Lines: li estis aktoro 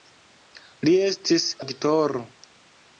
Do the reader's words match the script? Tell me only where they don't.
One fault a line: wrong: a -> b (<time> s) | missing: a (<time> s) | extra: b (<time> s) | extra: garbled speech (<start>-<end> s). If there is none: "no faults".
no faults